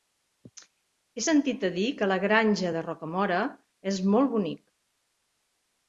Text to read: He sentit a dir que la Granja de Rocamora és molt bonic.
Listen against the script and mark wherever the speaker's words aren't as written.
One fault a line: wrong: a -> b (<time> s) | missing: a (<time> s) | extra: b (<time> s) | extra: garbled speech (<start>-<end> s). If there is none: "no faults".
no faults